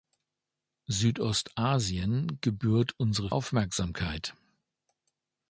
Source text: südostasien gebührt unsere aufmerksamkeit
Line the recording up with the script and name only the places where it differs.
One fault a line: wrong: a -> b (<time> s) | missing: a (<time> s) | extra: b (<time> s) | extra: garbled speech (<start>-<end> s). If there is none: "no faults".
no faults